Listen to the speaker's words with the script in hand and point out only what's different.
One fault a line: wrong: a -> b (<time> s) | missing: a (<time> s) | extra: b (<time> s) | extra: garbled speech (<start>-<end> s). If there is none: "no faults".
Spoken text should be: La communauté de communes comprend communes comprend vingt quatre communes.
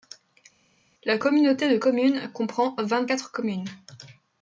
missing: communes comprend (2.7 s)